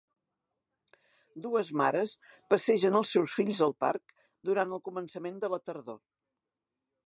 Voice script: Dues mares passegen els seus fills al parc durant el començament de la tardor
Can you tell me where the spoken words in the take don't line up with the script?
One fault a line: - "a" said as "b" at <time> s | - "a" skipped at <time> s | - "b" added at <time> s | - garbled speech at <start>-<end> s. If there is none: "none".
none